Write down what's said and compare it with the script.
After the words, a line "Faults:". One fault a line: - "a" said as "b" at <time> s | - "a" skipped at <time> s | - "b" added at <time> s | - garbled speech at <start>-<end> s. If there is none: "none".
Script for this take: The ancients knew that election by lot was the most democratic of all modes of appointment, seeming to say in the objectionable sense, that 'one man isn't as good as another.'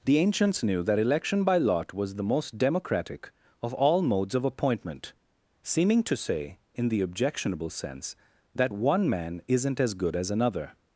The ancients knew that election by lot was the most democratic of all modes of appointment, seeming to say in the objectionable sense, that 'one man isn't as good as another.'
Faults:
none